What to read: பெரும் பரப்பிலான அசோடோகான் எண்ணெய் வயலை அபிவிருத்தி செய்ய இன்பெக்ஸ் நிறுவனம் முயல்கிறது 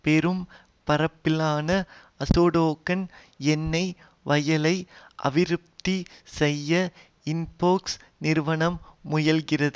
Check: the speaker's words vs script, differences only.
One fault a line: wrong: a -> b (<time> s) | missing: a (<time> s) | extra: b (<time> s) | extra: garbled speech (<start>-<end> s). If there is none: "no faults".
no faults